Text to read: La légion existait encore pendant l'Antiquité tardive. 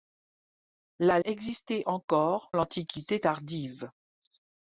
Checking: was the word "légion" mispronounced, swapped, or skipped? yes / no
yes